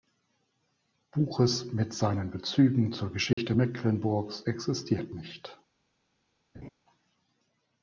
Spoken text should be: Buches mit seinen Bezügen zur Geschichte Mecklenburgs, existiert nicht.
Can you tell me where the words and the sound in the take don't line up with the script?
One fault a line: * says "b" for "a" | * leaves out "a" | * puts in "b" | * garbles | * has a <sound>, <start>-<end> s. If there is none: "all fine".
* has a dropout, 3.3-3.4 s
* has a laugh, 6.5-6.7 s